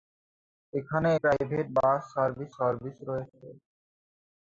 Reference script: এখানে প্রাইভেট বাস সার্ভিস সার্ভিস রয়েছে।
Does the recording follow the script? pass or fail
pass